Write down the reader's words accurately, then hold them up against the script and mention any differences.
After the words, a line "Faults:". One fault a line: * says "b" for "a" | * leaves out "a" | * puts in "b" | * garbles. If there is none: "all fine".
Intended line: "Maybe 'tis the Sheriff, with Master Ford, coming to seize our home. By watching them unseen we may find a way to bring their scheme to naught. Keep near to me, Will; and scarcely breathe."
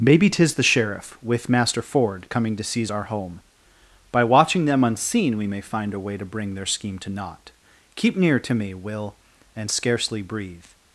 "Maybe 'tis the Sheriff, with Master Ford, coming to seize our home. By watching them unseen we may find a way to bring their scheme to naught. Keep near to me, Will; and scarcely breathe."
Faults:
all fine